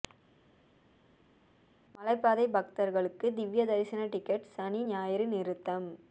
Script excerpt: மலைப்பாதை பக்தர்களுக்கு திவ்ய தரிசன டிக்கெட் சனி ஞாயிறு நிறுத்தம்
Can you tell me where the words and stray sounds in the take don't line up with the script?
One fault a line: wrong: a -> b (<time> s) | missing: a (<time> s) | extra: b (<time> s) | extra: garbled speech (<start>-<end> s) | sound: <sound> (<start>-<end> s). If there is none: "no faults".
no faults